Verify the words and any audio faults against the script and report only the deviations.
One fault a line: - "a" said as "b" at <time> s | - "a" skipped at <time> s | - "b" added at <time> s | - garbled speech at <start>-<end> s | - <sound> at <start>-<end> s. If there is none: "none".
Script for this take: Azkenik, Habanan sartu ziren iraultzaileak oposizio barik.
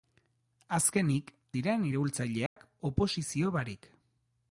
- "Habanan sartu" skipped at 1.3 s
- dropout at 2.5-2.6 s